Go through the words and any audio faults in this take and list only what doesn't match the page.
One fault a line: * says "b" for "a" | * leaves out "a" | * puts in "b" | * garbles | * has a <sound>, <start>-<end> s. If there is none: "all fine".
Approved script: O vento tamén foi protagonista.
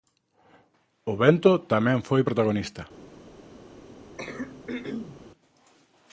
* has a throat clearing, 4.2-5.2 s